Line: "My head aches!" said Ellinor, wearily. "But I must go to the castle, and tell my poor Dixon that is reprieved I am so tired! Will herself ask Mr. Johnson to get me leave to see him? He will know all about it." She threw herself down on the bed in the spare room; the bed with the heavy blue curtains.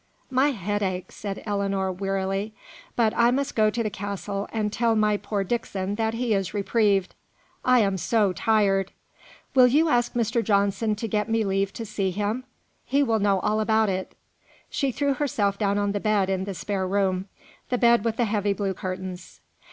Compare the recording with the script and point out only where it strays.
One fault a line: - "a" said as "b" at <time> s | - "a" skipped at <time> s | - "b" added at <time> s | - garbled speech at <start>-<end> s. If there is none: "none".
- "he" added at 6.1 s
- "herself" said as "you" at 9.7 s